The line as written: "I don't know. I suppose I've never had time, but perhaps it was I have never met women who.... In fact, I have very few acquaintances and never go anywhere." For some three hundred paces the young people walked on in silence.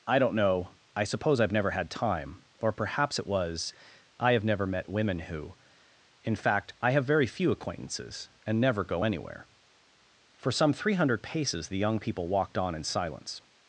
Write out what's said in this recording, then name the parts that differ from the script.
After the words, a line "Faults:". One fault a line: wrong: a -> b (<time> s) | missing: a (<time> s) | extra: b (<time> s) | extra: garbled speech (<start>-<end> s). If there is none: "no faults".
"I don't know. I suppose I've never had time, or perhaps it was I have never met women who.... In fact, I have very few acquaintances and never go anywhere." For some three hundred paces the young people walked on in silence.
Faults:
wrong: but -> or (2.6 s)